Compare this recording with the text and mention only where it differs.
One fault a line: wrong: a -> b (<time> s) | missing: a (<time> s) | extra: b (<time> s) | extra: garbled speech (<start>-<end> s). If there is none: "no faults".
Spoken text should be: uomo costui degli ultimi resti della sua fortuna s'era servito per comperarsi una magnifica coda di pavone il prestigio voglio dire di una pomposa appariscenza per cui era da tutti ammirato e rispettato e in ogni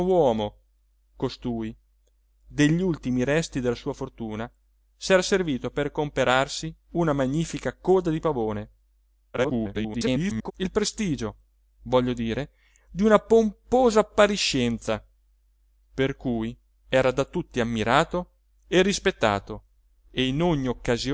extra: garbled speech (9.3-10.5 s)